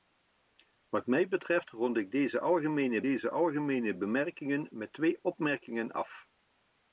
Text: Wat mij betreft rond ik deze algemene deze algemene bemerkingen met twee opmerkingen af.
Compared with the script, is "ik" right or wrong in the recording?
right